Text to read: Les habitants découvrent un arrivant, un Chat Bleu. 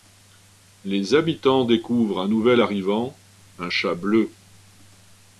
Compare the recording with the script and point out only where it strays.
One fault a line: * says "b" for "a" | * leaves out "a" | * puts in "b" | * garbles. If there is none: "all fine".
* puts in "nouvel"